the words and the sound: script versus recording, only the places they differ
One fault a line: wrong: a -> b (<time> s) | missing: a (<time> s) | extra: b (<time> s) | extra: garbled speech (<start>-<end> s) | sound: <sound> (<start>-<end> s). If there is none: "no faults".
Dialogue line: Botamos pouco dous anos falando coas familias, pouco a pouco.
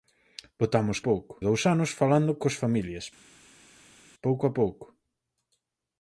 no faults